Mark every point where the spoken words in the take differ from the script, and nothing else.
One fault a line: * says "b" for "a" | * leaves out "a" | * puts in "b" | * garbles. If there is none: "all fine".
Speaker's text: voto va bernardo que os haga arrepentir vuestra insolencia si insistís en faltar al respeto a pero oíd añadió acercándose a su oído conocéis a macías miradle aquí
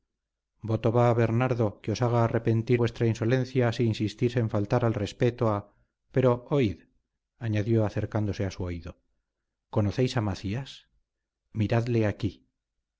all fine